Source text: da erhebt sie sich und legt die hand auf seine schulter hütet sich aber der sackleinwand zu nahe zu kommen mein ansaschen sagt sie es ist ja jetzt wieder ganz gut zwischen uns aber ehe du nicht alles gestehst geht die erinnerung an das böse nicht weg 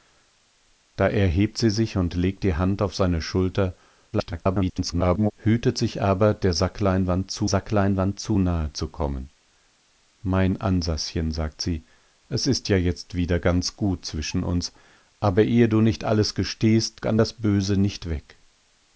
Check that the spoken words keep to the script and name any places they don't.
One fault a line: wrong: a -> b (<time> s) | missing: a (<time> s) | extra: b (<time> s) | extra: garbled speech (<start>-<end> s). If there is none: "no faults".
extra: garbled speech (4.1-5.3 s)
extra: sackleinwand zu (7.4 s)
missing: geht die erinnerung (17.0 s)